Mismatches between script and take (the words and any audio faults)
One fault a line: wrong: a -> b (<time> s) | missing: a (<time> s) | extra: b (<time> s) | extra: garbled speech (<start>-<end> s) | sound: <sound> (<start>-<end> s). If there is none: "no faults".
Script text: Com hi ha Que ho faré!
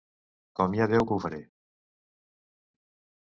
extra: Déu (0.9 s)